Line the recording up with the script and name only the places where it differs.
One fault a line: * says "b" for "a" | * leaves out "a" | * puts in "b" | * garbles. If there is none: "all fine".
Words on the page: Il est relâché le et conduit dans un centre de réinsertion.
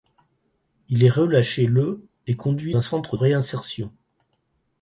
* leaves out "dans"
* leaves out "de"